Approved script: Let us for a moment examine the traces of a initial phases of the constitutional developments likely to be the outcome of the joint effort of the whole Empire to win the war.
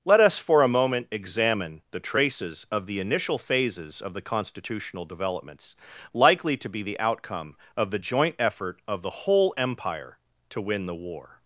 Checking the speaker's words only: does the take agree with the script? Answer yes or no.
no